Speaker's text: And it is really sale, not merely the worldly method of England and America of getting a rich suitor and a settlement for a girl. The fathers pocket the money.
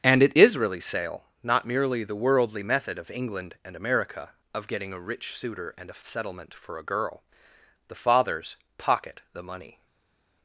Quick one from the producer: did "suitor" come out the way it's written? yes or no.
yes